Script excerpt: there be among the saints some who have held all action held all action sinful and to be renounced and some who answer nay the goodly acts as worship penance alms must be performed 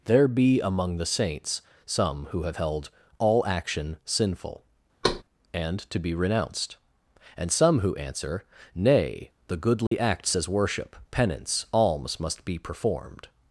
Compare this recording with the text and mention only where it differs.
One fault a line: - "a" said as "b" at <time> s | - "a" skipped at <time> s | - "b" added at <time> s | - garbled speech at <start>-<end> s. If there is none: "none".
- "held all action" skipped at 4.0 s